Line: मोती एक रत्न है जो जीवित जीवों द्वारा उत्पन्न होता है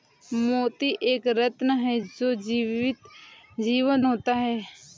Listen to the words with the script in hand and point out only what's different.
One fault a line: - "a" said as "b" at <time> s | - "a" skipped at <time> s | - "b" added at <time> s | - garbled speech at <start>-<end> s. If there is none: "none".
- "द्वारा उत्पन्न" skipped at 4.0 s